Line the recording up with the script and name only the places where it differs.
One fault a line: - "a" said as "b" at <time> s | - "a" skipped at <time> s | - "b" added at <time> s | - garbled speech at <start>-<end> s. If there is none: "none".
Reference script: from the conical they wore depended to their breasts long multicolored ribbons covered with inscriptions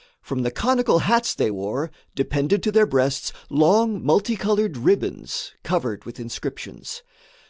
- "hats" added at 1.0 s